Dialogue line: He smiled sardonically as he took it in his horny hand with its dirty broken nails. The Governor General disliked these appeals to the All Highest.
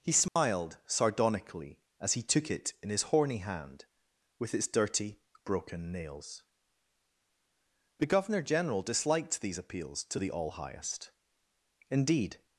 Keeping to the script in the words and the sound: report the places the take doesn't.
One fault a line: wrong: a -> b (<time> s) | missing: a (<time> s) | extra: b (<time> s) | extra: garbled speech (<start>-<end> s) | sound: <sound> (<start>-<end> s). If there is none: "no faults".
sound: dropout (0.3-0.4 s)
extra: Indeed (11.9 s)